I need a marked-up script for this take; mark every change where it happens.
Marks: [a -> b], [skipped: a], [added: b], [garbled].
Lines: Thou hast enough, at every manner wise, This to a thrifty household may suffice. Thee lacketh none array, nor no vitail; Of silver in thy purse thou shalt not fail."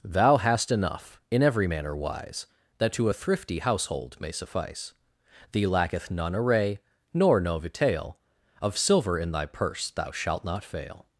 Thou hast enough, [at -> in] every manner wise, [This -> That] to a thrifty household may suffice. Thee lacketh none array, nor no vitail; Of silver in thy purse thou shalt not fail."